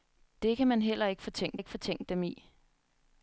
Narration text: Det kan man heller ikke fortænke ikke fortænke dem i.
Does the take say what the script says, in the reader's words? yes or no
yes